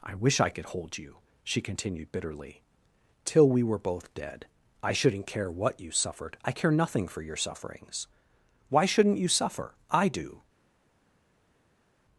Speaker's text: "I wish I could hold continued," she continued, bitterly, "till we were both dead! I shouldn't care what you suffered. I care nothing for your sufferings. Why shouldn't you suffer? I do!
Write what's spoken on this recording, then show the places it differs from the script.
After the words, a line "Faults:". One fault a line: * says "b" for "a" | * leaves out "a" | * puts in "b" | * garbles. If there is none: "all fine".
"I wish I could hold you," she continued, bitterly, "till we were both dead! I shouldn't care what you suffered. I care nothing for your sufferings. Why shouldn't you suffer? I do!
Faults:
* says "you" for "continued"